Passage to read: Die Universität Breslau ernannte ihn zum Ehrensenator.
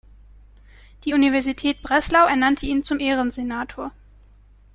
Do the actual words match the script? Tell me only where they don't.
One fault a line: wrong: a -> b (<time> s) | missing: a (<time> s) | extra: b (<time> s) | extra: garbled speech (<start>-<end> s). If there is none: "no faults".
no faults